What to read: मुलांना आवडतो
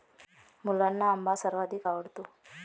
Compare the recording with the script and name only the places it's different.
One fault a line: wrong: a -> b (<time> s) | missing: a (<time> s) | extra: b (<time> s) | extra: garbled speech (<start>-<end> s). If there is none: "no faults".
extra: आंबा सर्वाधिक (1.1 s)